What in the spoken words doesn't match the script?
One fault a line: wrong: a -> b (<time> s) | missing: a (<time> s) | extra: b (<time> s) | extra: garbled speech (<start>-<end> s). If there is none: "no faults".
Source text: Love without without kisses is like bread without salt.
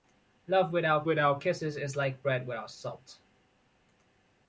no faults